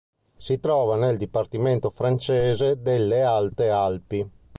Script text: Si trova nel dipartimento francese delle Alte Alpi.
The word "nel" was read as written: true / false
true